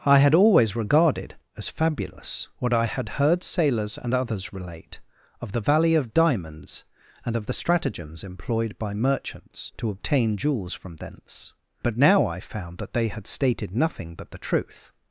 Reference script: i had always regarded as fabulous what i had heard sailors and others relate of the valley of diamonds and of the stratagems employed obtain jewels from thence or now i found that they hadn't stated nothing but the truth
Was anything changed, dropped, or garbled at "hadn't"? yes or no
yes